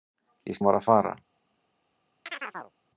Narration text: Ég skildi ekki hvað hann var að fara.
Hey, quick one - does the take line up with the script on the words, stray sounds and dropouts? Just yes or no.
no